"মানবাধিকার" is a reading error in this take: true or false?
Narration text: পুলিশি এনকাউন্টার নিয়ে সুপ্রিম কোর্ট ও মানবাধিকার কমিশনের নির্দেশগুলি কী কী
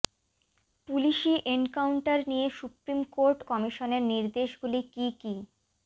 true